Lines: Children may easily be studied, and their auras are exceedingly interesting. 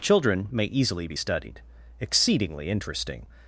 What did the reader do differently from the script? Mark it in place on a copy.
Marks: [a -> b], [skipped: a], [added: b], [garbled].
Children may easily be studied, [skipped: and their auras are] exceedingly interesting.